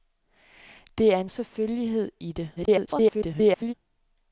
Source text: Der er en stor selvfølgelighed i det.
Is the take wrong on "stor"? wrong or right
wrong